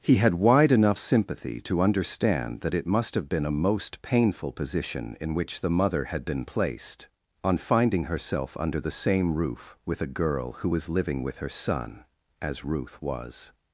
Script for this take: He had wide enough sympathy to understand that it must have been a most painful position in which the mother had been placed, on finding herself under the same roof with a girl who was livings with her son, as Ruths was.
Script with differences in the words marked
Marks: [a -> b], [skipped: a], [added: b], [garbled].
He had wide enough sympathy to understand that it must have been a most painful position in which the mother had been placed, on finding herself under the same roof with a girl who was [livings -> living] with her son, as [Ruths -> Ruth] was.